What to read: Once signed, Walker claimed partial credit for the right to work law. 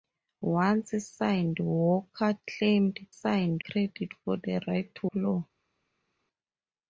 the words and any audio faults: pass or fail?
fail